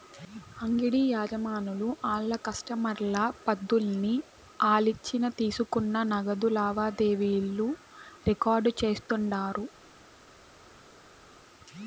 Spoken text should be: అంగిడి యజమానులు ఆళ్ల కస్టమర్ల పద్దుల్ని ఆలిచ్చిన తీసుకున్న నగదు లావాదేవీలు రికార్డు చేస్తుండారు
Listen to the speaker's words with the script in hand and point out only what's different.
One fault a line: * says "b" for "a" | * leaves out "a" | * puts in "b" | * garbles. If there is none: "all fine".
all fine